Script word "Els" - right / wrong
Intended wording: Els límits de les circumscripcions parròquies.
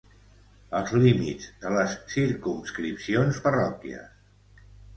right